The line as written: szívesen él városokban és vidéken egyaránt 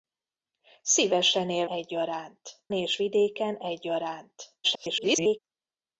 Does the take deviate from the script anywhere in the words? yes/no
yes